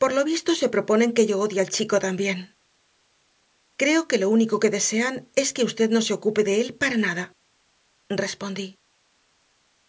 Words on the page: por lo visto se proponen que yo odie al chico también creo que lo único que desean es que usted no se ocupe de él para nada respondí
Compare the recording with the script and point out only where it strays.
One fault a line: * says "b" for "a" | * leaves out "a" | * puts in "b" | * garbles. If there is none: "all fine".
all fine